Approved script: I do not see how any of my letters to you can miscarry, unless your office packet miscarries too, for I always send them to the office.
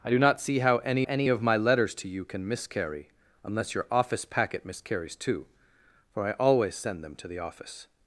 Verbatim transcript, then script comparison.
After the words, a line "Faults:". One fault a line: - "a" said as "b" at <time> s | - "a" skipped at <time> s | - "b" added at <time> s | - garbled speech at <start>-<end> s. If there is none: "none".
I do not see how any any of my letters to you can miscarry, unless your office packet miscarries too, for I always send them to the office.
Faults:
- "any" added at 1.0 s